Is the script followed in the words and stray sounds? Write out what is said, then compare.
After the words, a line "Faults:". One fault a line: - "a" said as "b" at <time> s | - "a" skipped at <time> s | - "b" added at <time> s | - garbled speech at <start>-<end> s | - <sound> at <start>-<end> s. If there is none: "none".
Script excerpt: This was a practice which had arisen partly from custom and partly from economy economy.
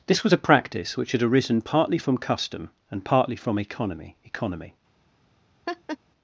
This was a practice which had arisen partly from custom and partly from economy economy.
Faults:
- laugh at 5.7-6.0 s